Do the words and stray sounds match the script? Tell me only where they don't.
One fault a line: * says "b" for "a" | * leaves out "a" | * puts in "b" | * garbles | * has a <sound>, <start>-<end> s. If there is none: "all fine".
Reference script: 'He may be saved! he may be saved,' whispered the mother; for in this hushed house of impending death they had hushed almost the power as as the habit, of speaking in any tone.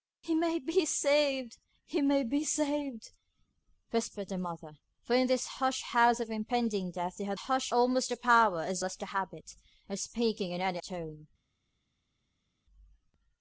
all fine